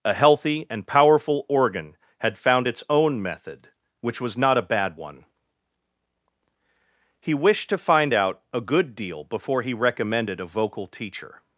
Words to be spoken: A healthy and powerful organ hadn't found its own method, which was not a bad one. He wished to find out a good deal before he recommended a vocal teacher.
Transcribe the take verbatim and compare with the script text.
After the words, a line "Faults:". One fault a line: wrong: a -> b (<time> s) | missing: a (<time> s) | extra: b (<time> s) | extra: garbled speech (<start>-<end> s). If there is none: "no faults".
A healthy and powerful organ had found its own method, which was not a bad one. He wished to find out a good deal before he recommended a vocal teacher.
Faults:
wrong: hadn't -> had (2.2 s)